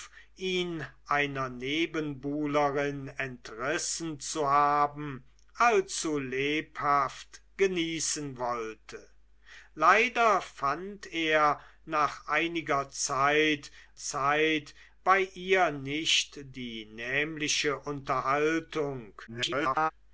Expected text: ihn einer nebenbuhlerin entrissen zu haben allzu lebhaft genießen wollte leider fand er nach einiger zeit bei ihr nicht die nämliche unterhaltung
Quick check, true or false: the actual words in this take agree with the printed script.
false